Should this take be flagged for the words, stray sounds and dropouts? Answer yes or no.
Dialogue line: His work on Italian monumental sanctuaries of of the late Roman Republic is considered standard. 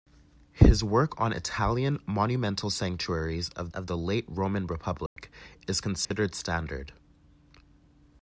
yes